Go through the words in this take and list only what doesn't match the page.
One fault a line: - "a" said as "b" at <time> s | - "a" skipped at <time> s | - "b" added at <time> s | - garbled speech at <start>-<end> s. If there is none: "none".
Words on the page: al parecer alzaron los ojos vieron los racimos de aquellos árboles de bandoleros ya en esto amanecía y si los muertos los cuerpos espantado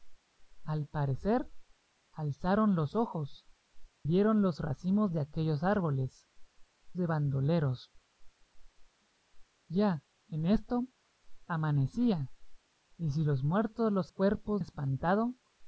none